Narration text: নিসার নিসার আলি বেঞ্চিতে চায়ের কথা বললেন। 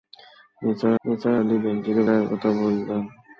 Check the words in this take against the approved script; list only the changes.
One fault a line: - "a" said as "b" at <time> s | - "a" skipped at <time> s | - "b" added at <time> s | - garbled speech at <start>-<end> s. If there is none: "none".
none